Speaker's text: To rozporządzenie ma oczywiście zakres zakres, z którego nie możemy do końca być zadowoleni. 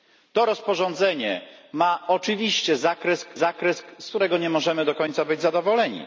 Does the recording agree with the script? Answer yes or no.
yes